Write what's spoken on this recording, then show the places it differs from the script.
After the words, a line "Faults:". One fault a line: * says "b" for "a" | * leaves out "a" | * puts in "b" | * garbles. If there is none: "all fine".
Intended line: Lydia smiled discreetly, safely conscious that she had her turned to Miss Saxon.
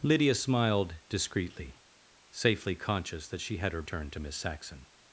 Lydia smiled discreetly, safely conscious that she had her turned to Miss Saxon.
Faults:
all fine